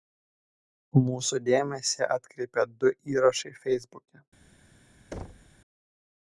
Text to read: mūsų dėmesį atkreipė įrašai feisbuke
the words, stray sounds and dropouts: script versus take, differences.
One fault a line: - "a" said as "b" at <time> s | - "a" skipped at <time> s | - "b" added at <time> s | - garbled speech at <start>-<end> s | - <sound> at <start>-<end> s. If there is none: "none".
- "du" added at 2.8 s
- thud at 5.1-5.6 s